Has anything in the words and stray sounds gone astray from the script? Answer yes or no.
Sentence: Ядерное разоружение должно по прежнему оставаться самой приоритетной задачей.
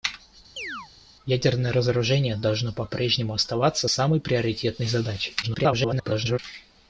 yes